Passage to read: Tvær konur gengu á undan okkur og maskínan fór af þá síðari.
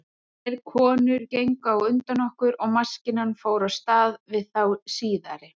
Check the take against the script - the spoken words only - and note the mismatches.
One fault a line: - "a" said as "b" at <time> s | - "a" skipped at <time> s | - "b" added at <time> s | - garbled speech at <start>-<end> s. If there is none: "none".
- "stað við" added at 3.8 s